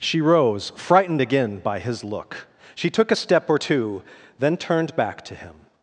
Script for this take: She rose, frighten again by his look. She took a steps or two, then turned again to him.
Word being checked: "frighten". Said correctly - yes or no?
no